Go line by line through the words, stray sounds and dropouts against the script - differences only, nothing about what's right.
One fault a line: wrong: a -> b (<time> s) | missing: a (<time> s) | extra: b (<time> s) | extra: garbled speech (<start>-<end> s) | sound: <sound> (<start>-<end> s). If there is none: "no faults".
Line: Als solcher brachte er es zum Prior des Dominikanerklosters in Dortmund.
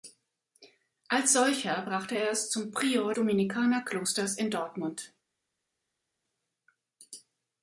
missing: des (3.2 s)